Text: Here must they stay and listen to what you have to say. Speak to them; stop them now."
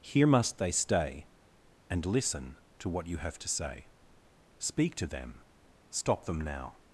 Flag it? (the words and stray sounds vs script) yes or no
no